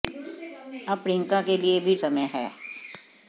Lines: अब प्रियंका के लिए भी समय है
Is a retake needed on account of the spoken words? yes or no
no